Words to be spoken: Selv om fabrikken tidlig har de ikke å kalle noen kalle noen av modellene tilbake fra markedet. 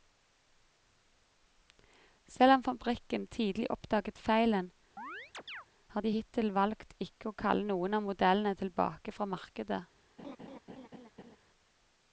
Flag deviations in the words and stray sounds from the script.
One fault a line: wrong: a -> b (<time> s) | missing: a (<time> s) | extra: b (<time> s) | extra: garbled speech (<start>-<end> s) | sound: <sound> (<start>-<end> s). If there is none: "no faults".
extra: oppdaget feilen (3.8 s)
sound: chirp (5.0-5.7 s)
extra: hittil valgt (6.1 s)
missing: kalle noen (8.0 s)
sound: laugh (10.2-11.4 s)